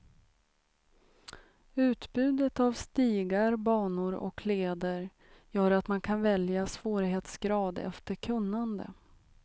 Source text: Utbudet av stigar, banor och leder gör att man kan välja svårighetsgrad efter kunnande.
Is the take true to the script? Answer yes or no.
yes